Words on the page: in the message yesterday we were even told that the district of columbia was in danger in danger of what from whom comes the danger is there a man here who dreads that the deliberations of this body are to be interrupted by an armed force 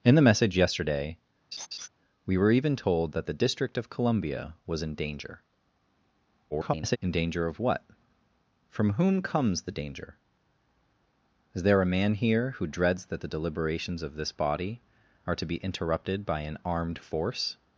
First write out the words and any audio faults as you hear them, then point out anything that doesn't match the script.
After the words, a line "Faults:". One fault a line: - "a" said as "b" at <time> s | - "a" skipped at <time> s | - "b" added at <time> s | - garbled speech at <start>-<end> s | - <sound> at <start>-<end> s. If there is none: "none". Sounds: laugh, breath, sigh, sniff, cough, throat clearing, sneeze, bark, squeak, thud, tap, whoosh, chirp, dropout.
in the message yesterday we were even told that the district of columbia was in danger [garbled] in danger of what from whom comes the danger is there a man here who dreads that the deliberations of this body are to be interrupted by an armed force
Faults:
- laugh at 1.5-1.9 s
- garbled speech at 6.5-7.0 s